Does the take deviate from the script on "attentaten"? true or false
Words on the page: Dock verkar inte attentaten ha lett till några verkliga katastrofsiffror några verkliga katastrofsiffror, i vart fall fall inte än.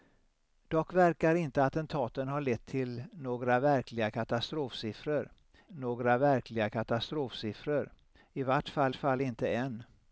false